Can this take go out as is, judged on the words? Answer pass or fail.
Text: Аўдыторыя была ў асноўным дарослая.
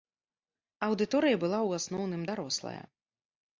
pass